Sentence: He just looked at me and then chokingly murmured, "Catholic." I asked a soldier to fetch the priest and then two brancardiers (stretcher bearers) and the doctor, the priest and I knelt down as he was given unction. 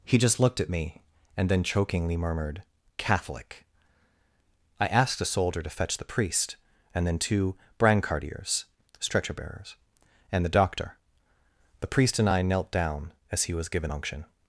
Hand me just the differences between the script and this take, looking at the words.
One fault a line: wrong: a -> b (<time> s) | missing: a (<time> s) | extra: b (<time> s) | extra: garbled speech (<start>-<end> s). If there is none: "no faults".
no faults